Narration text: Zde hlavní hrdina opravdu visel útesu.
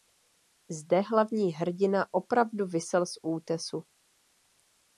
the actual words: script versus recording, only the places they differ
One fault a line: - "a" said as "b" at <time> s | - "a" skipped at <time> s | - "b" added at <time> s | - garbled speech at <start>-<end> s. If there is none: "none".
- "z" added at 3.1 s